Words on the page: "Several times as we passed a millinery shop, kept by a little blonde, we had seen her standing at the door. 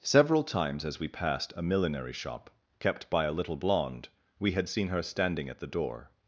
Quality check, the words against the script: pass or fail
pass